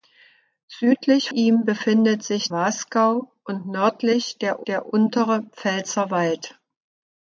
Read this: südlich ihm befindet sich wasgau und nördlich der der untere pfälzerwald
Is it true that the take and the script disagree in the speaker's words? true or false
false